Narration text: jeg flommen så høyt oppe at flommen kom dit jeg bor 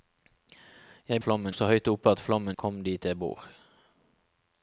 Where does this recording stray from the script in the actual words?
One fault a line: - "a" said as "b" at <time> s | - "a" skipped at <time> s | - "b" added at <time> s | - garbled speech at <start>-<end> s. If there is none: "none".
none